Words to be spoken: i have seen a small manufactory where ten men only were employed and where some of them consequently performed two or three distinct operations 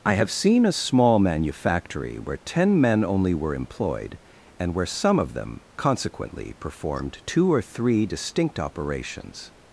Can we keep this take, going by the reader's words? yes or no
yes